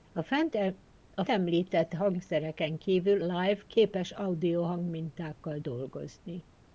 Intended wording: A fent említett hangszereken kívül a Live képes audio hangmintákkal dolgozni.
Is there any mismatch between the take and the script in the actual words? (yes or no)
yes